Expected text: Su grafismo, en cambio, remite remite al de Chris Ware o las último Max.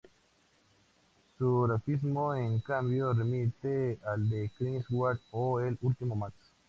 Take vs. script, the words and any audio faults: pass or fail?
fail